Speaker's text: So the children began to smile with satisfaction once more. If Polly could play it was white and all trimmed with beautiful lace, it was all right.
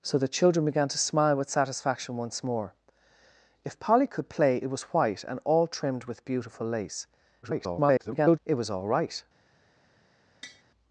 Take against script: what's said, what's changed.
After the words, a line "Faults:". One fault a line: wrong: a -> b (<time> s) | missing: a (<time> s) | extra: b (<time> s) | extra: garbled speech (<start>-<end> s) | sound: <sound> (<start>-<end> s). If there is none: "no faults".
So the children began to smile with satisfaction once more. If Polly could play it was white and all trimmed with beautiful lace, [garbled] it was all right.
Faults:
extra: garbled speech (7.4-8.4 s)
sound: tap (10.4-10.6 s)